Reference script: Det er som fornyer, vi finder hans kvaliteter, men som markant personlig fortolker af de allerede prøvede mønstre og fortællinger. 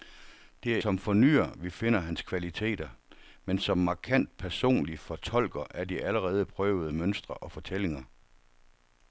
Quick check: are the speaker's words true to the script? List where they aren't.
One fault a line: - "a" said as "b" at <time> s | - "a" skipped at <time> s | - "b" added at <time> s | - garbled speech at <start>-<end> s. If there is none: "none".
none